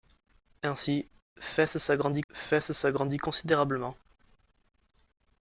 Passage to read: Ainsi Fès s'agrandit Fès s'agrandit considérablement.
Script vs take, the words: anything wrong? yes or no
no